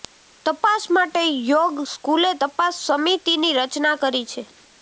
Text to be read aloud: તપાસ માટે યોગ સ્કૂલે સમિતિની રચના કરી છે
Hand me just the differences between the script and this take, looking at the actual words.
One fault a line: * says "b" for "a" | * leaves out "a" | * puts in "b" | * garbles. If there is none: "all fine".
* puts in "તપાસ"